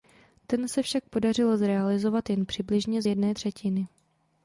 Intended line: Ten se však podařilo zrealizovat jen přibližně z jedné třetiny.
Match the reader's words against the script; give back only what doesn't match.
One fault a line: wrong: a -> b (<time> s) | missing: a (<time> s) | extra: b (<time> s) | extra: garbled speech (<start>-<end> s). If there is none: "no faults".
no faults